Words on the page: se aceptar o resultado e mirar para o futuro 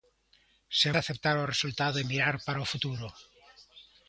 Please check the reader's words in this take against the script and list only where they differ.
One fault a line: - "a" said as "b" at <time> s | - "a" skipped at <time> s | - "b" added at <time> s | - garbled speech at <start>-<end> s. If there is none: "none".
none